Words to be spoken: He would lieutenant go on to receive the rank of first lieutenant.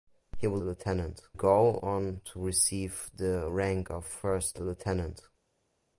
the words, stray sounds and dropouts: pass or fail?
pass